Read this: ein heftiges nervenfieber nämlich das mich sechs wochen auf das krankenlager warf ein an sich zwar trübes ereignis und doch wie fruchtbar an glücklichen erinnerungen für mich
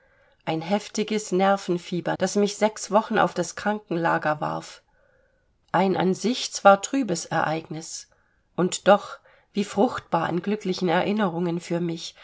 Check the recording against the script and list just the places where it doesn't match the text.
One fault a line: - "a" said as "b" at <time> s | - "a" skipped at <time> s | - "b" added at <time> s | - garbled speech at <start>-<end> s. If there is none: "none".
- "nämlich" skipped at 2.2 s